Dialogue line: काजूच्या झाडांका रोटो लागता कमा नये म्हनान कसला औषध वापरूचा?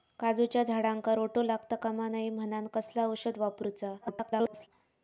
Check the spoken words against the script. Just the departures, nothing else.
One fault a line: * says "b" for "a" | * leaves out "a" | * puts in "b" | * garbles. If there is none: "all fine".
* garbles